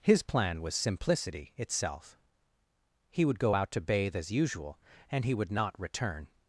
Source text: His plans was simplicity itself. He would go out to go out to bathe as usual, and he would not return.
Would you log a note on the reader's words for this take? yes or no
yes